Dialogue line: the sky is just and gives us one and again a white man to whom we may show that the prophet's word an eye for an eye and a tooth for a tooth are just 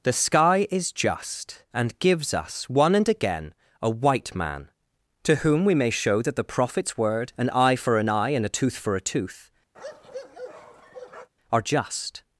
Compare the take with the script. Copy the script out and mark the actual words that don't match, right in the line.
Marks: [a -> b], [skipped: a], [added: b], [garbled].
the sky is just and gives us one and again a white man to whom we may show that the prophet's word an eye for an eye and a tooth for a tooth are just